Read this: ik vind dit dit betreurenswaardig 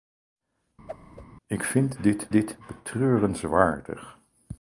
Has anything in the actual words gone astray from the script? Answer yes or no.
no